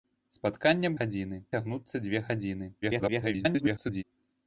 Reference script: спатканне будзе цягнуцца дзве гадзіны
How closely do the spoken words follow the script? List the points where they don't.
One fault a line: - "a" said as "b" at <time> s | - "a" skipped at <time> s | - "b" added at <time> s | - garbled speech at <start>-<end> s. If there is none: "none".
- "будзе" said as "гадзіны" at 1.0 s
- garbled speech at 2.8-4.0 s